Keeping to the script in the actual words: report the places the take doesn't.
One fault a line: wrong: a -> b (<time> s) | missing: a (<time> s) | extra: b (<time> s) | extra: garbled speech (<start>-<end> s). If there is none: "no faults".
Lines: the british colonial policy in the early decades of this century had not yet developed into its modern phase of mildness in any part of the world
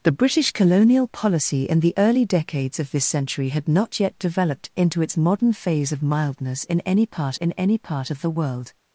extra: in any part (7.3 s)